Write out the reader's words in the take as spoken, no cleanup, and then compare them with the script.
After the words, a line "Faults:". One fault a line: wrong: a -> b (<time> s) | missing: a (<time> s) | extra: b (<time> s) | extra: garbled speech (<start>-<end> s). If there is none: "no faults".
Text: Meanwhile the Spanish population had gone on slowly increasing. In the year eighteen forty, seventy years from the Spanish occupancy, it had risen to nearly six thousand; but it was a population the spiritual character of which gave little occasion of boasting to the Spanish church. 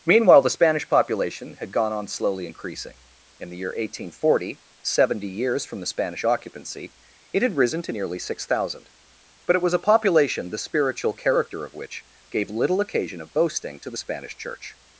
Meanwhile the Spanish population had gone on slowly increasing. In the year eighteen forty, seventy years from the Spanish occupancy, it had risen to nearly six thousand; but it was a population the spiritual character of which gave little occasion of boasting to the Spanish church.
Faults:
no faults